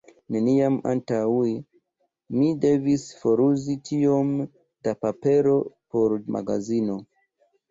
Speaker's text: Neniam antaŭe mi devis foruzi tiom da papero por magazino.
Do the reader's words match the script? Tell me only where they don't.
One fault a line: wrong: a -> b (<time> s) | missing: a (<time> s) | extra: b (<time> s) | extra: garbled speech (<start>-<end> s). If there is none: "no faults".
no faults